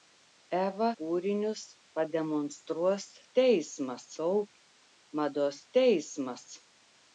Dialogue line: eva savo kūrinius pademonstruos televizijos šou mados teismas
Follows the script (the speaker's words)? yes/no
no